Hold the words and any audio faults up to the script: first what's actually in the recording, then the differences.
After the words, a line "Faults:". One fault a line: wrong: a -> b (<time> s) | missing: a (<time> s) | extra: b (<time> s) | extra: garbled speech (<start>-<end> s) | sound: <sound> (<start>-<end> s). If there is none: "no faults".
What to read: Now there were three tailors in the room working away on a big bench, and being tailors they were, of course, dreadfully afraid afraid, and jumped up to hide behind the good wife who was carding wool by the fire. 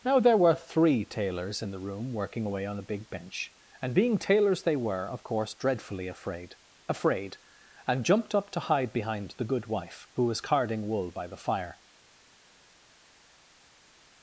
Now there were three tailors in the room working away on a big bench, and being tailors they were, of course, dreadfully afraid afraid, and jumped up to hide behind the good wife who was carding wool by the fire.
Faults:
no faults